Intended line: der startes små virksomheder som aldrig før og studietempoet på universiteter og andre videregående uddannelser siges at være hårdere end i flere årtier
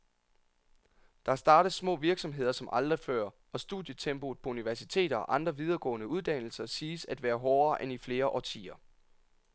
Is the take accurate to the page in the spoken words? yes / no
yes